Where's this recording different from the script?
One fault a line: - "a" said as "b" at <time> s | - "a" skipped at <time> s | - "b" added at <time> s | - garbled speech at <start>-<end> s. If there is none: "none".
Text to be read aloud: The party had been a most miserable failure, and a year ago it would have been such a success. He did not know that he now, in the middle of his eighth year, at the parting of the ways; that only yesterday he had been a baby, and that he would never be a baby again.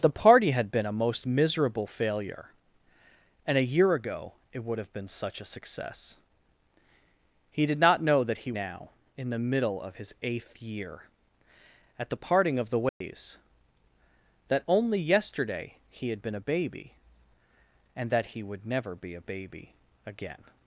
none